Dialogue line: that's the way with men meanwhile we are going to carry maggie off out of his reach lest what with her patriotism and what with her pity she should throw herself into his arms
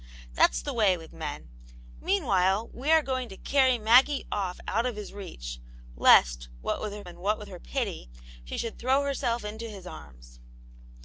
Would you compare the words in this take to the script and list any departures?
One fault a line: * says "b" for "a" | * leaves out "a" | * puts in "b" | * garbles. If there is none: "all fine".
* leaves out "patriotism"